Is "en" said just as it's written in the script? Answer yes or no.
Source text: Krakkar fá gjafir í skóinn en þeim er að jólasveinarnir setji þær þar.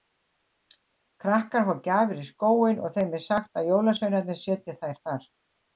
no